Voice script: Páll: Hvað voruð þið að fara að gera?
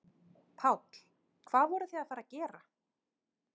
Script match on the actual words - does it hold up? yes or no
yes